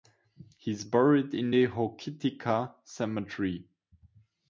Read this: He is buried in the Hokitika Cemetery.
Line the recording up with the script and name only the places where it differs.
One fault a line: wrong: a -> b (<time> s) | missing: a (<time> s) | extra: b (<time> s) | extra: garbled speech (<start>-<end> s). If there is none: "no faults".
no faults